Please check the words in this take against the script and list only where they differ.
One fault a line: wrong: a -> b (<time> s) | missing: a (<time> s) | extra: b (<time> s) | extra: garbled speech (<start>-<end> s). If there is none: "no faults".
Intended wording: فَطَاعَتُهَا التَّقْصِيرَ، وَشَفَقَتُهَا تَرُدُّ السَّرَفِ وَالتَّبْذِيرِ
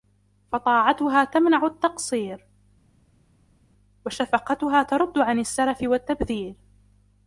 extra: تَمْنَعُ (1.2 s)
extra: عَنْ (5.2 s)